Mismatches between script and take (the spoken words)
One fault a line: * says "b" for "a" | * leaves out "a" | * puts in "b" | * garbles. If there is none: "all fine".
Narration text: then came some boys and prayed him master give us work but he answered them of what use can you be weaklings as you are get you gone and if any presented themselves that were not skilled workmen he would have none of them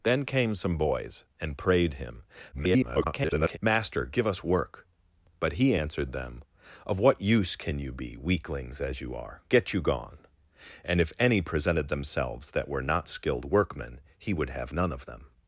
* garbles